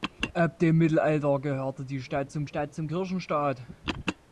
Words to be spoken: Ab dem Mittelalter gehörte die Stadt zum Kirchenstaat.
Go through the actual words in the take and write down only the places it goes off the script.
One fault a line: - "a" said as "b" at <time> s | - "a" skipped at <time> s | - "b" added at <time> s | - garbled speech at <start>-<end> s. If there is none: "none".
- "Stadt zum" added at 2.4 s